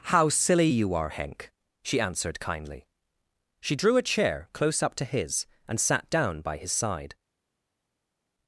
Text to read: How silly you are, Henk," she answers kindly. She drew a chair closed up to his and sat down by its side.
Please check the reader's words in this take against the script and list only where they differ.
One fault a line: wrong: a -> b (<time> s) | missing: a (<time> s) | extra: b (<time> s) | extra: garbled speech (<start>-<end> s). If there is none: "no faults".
wrong: answers -> answered (2.0 s)
wrong: closed -> close (4.5 s)
wrong: its -> his (6.6 s)